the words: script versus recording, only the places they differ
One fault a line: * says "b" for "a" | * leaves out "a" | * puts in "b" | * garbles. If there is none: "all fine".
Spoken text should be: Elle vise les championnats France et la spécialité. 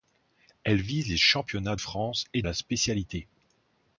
all fine